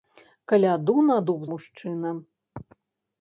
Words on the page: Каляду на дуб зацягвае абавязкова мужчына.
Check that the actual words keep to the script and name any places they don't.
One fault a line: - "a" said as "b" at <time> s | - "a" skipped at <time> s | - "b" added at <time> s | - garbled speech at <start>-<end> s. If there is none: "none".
- "зацягвае абавязкова" skipped at 1.4 s